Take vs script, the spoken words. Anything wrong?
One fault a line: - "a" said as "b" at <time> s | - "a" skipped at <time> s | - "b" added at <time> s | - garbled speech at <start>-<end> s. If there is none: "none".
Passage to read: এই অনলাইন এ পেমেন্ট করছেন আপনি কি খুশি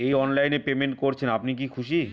none